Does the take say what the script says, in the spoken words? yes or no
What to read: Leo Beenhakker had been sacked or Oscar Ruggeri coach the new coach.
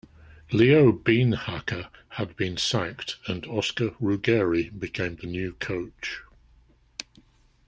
no